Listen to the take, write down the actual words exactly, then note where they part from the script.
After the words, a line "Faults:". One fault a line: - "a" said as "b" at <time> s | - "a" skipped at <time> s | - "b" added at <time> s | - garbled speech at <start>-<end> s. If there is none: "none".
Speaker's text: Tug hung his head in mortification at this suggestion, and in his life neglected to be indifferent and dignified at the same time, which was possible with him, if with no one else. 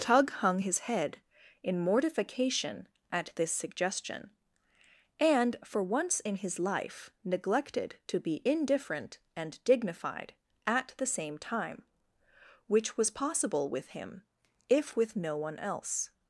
Tug hung his head in mortification at this suggestion, and for once in his life neglected to be indifferent and dignified at the same time, which was possible with him, if with no one else.
Faults:
- "for once" added at 5.7 s